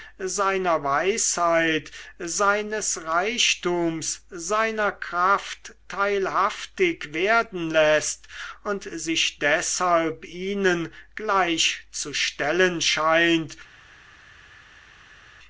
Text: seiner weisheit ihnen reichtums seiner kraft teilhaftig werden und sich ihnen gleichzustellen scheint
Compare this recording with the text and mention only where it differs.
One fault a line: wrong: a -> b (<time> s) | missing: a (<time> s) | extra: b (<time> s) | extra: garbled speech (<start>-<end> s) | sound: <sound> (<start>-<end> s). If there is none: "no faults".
wrong: ihnen -> seines (2.2 s)
extra: läßt (7.7 s)
extra: deshalb (9.4 s)